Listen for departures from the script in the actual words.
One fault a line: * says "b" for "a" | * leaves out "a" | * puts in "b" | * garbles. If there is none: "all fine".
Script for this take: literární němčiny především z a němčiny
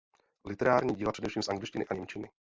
* says "díla" for "němčiny"
* puts in "angličtiny"